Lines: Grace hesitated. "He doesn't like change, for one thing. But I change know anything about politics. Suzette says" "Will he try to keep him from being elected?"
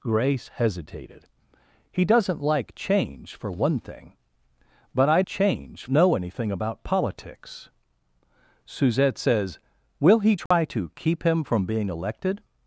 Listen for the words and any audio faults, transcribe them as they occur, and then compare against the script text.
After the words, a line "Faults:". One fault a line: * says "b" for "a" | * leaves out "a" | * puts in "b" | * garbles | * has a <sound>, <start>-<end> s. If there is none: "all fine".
Grace hesitated. "He doesn't like change, for one thing. But I change know anything about politics. Suzette says" "Will he try to keep him from being elected?"
Faults:
* has a dropout, 10.5-10.5 s